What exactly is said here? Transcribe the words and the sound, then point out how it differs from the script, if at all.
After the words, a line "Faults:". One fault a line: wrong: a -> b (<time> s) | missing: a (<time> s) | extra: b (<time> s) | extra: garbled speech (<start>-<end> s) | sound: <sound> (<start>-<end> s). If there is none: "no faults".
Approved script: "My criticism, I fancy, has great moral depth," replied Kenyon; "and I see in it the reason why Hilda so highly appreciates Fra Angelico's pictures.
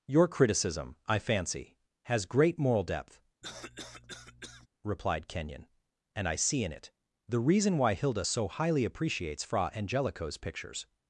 "Your criticism, I fancy, has great moral depth," replied Kenyon; "and I see in it the reason why Hilda so highly appreciates Fra Angelico's pictures.
Faults:
wrong: My -> Your (0.1 s)
sound: cough (3.4-4.7 s)